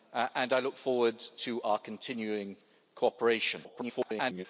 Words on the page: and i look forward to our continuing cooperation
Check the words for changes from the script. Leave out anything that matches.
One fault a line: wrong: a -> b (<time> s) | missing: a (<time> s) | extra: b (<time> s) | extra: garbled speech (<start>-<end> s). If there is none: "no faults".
extra: garbled speech (3.6-4.5 s)